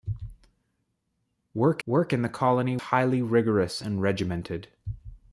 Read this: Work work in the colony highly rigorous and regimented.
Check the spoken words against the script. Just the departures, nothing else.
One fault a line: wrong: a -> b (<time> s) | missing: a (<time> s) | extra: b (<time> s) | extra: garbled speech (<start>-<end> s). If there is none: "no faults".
no faults